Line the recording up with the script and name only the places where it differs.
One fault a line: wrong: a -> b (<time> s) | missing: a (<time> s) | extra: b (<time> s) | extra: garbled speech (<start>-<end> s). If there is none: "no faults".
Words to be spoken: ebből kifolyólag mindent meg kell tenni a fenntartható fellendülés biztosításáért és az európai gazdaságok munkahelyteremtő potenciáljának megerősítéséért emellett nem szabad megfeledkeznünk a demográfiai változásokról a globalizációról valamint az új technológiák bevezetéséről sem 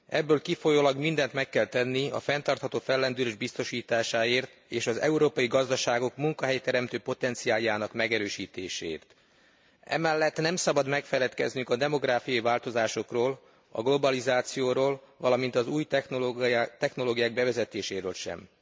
no faults